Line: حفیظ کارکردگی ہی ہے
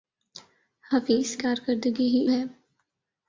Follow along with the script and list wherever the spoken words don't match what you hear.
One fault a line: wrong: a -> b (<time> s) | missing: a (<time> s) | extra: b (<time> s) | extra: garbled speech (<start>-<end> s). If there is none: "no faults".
no faults